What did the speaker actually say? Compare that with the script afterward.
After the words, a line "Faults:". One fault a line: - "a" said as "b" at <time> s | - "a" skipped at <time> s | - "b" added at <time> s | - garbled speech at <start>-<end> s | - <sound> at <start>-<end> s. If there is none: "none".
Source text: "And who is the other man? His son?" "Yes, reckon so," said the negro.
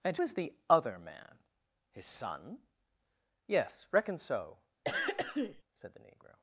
"And is the other man? His son?" "Yes, reckon so," said the negro.
Faults:
- "who" skipped at 0.2 s
- throat clearing at 4.8-5.6 s